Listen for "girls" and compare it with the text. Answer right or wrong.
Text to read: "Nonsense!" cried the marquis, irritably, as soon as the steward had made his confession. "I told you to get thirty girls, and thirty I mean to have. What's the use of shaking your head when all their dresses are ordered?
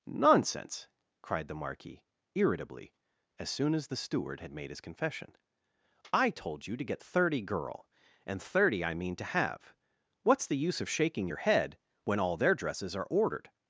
wrong